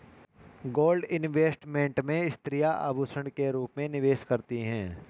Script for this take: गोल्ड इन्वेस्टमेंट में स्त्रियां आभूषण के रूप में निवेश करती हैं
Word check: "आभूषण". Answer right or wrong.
right